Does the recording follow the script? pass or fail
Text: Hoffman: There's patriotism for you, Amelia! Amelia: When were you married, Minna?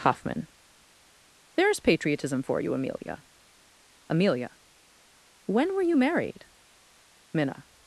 pass